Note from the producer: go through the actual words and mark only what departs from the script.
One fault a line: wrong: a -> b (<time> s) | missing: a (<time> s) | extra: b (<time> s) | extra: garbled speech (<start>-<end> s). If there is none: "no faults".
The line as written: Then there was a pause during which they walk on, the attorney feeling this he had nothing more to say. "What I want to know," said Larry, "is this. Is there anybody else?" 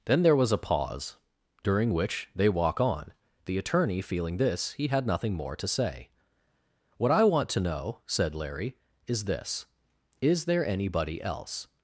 no faults